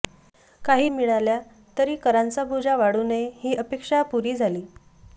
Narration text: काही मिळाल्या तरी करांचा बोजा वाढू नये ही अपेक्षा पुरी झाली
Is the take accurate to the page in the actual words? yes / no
yes